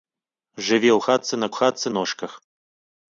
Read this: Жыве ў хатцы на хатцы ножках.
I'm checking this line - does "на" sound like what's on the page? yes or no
yes